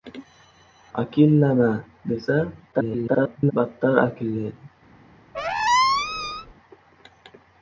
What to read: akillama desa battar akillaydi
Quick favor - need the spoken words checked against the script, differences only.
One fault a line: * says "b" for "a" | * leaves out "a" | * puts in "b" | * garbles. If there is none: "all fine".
* garbles